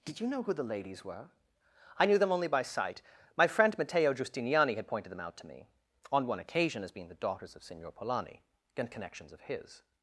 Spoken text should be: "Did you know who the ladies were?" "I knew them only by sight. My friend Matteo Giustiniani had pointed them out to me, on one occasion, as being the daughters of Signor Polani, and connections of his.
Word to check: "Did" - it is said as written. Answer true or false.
true